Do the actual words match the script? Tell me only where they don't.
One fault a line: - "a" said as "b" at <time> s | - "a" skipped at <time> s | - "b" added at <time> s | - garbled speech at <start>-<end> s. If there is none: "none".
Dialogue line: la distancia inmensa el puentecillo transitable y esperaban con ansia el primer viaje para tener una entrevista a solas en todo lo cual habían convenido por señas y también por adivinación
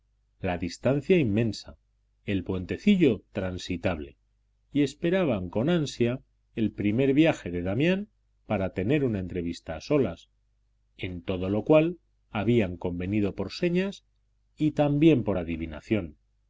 - "de damián" added at 7.5 s